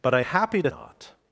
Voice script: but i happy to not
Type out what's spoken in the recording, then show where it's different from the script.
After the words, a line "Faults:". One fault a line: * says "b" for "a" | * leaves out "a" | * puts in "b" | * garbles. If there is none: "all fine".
but i happy to not
Faults:
all fine